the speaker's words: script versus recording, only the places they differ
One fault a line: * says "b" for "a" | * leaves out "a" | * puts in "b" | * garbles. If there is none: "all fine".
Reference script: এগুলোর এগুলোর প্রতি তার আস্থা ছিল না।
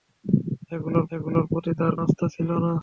all fine